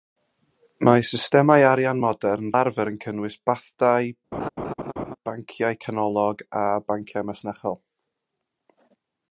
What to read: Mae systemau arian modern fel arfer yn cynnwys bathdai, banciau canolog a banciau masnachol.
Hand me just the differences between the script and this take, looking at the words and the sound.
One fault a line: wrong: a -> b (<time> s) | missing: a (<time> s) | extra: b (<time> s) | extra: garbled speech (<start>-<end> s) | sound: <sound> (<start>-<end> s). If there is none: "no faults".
missing: fel (2.5 s)
sound: laugh (4.3-5.2 s)